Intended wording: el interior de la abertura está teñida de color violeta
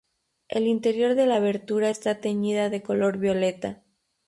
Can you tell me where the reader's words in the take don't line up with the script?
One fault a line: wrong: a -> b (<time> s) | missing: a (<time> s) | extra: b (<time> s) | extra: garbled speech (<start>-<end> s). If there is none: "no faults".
no faults